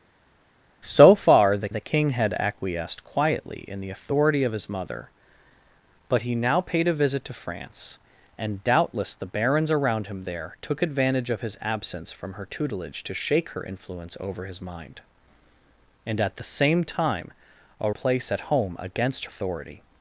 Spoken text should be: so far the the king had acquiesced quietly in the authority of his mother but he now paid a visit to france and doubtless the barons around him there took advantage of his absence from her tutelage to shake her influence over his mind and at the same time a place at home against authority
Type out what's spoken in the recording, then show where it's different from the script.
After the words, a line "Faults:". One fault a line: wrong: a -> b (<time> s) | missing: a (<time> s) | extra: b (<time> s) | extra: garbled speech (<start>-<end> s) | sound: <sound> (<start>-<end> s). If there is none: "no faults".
so far the the king had acquiesced quietly in the authority of his mother but he now paid a visit to france and doubtless the barons around him there took advantage of his absence from her tutelage to shake her influence over his mind and at the same time a place at home against authority
Faults:
no faults